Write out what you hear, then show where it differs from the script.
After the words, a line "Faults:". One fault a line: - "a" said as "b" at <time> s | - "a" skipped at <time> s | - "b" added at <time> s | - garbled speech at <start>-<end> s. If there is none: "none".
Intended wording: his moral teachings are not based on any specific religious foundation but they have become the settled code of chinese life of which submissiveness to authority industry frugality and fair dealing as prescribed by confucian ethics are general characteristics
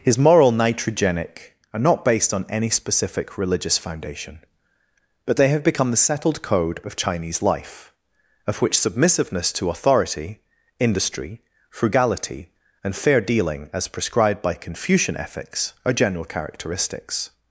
his moral nitrogenic are not based on any specific religious foundation but they have become the settled code of chinese life of which submissiveness to authority industry frugality and fair dealing as prescribed by confucian ethics are general characteristics
Faults:
- "teachings" said as "nitrogenic" at 0.5 s